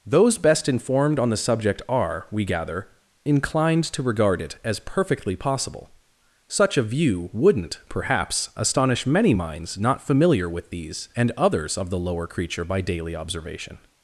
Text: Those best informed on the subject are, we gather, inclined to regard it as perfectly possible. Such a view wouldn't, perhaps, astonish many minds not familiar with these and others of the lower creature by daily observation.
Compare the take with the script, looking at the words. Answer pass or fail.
pass